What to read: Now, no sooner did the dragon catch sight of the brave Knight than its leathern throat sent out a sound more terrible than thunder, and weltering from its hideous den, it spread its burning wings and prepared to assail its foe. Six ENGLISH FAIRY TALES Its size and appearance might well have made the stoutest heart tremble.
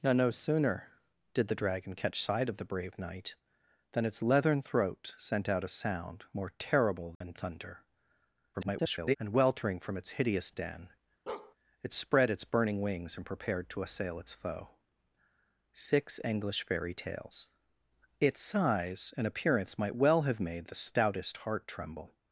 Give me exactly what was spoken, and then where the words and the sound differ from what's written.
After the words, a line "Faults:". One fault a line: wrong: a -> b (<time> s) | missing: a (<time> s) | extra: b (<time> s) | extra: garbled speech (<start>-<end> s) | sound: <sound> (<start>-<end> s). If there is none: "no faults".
Now, no sooner did the dragon catch sight of the brave Knight than its leathern throat sent out a sound more terrible than thunder, [garbled] and weltering from its hideous den, it spread its burning wings and prepared to assail its foe. Six ENGLISH FAIRY TALES Its size and appearance might well have made the stoutest heart tremble.
Faults:
sound: dropout (7.2-7.2 s)
extra: garbled speech (8.5-9.2 s)
sound: bark (11.3-11.6 s)